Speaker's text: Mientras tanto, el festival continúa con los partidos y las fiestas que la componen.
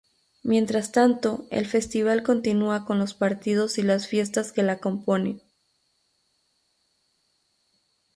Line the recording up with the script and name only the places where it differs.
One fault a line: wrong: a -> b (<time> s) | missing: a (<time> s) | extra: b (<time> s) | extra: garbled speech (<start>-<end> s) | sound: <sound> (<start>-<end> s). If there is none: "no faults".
no faults